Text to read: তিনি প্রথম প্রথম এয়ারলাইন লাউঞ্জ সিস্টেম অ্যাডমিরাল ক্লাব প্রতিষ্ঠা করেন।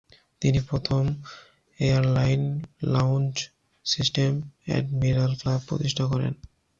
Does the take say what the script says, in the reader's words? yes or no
no